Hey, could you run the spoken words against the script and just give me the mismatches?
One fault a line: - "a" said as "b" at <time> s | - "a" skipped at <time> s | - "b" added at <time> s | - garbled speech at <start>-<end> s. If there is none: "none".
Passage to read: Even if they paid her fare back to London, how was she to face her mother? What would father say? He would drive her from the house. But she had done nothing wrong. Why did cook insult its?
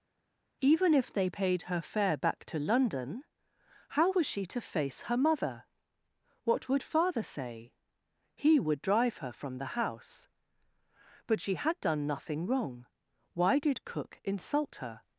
- "its" said as "her" at 14.8 s